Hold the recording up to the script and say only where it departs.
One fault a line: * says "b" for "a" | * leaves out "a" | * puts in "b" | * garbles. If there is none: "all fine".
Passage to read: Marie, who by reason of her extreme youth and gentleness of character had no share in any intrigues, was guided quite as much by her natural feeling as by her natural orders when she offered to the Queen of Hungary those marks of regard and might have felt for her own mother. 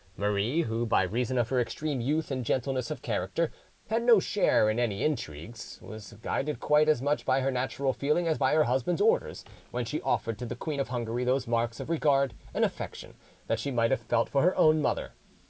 * says "husband's" for "natural"
* puts in "affection that she"